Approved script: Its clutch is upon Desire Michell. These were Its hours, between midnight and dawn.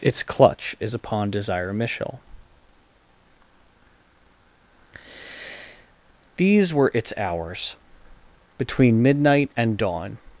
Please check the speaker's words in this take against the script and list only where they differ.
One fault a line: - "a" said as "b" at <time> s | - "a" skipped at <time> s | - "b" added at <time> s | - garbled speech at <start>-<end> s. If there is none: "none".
none